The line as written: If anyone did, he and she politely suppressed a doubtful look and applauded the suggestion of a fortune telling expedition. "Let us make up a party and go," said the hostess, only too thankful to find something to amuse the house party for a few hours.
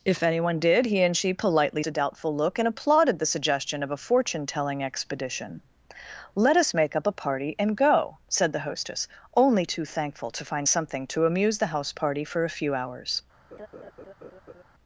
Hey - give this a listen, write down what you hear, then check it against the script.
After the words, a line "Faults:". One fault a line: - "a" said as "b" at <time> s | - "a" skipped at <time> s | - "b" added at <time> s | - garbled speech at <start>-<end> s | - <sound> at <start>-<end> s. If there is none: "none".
If anyone did, he and she politely a doubtful look and applauded the suggestion of a fortune telling expedition. "Let us make up a party and go," said the hostess, only too thankful to find something to amuse the house party for a few hours.
Faults:
- "suppressed" skipped at 1.8 s
- laugh at 13.5-14.6 s